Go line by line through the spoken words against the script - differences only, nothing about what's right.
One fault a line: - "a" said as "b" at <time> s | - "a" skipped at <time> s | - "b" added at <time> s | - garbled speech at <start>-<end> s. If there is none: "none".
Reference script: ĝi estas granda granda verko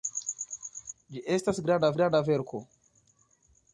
none